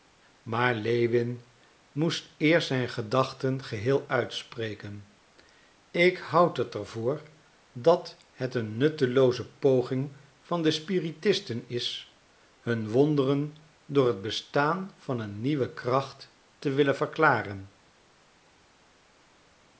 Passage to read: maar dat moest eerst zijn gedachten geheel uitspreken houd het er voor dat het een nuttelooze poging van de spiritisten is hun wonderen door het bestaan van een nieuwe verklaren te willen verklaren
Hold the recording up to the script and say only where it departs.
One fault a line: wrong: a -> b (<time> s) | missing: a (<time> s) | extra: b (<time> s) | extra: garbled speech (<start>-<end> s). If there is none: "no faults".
wrong: dat -> lewin (0.8 s)
extra: ik (5.9 s)
wrong: verklaren -> kracht (15.7 s)